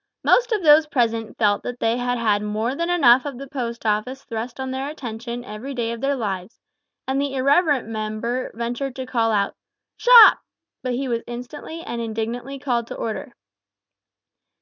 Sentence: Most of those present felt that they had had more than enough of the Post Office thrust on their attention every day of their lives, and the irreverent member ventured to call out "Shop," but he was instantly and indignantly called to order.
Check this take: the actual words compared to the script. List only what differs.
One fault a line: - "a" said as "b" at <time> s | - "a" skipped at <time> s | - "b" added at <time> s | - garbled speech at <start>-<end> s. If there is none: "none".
none